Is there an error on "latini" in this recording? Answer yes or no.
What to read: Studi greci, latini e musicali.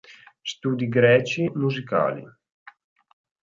yes